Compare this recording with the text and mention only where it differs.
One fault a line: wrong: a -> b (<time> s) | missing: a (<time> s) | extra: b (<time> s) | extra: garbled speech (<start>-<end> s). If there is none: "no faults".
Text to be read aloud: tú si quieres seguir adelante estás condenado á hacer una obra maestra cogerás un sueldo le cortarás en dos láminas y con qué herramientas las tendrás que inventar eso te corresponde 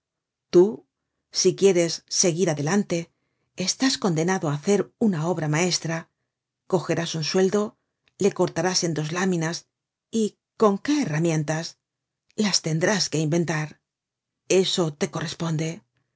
no faults